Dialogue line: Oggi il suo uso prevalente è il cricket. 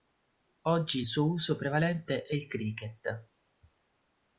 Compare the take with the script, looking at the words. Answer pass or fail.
pass